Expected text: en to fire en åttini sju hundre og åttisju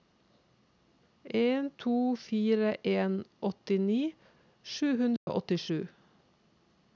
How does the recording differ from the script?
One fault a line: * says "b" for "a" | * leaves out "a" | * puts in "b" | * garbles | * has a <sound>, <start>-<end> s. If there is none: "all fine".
* has a dropout, 5.2-5.3 s